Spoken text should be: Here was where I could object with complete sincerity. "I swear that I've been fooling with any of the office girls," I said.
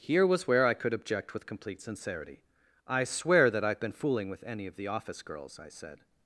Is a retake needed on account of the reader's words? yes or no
no